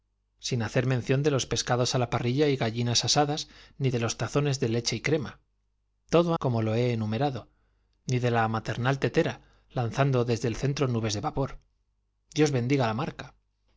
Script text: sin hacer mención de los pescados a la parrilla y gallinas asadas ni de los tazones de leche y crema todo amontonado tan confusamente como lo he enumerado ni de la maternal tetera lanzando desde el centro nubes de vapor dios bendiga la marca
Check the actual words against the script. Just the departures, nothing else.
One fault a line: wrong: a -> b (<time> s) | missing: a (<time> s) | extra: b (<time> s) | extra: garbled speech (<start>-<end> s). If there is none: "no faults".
missing: amontonado tan confusamente (6.3 s)